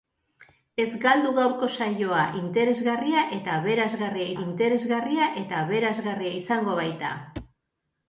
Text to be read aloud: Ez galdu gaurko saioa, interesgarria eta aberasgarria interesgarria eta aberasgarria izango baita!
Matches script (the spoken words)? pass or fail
pass